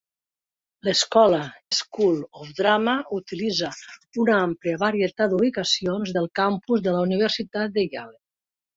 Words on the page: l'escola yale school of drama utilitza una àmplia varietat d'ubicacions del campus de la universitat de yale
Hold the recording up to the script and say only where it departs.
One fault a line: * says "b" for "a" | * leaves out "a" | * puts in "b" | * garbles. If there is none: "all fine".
* leaves out "yale"